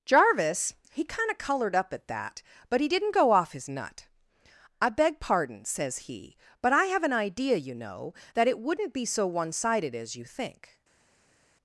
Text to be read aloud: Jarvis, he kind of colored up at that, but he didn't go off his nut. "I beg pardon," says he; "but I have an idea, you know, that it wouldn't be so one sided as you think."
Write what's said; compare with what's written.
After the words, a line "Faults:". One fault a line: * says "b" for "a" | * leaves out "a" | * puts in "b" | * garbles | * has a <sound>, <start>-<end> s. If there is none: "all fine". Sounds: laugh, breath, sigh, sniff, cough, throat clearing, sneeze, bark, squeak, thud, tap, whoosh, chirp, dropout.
Jarvis, he kind of colored up at that, but he didn't go off his nut. "I beg pardon," says he; "but I have an idea, you know, that it wouldn't be so one sided as you think."
Faults:
all fine